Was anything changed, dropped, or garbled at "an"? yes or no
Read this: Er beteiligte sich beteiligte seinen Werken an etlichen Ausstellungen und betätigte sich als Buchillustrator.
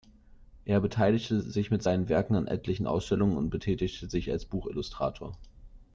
no